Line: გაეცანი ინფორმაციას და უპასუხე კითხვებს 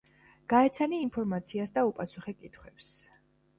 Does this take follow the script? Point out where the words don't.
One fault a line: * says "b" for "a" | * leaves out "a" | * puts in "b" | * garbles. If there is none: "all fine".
all fine